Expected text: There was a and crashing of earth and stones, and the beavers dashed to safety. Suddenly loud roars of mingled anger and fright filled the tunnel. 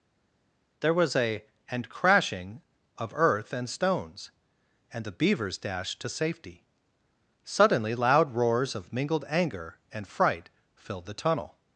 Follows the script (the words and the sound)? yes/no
yes